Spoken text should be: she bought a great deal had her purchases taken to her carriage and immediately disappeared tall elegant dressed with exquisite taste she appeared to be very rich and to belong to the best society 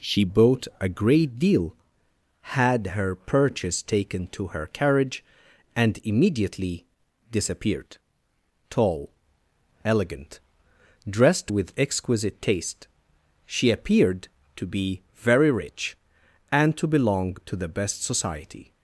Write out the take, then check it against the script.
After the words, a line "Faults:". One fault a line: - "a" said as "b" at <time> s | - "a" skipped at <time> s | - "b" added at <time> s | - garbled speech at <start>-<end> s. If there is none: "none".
she bought a great deal had her purchase taken to her carriage and immediately disappeared tall elegant dressed with exquisite taste she appeared to be very rich and to belong to the best society
Faults:
- "purchases" said as "purchase" at 3.1 s